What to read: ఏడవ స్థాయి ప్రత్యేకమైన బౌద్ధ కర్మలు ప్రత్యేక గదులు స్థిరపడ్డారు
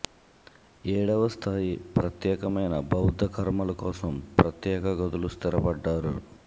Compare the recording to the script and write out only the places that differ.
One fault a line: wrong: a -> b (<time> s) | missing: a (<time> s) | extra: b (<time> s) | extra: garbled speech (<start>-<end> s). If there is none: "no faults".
extra: కోసం (3.8 s)